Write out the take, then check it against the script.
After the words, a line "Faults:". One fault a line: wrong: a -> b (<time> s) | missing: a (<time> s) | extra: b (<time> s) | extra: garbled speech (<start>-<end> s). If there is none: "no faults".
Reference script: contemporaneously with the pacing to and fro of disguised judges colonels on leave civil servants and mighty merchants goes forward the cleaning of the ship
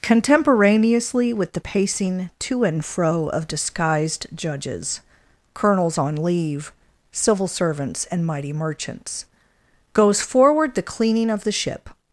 contemporaneously with the pacing to and fro of disguised judges colonels on leave civil servants and mighty merchants goes forward the cleaning of the ship
Faults:
no faults